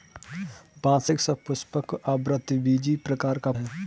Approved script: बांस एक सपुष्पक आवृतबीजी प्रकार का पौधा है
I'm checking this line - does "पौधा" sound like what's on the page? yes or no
no